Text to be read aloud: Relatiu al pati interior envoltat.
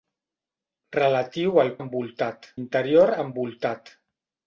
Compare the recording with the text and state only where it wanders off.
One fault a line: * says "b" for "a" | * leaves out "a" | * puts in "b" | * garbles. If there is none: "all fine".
* says "envoltat" for "pati"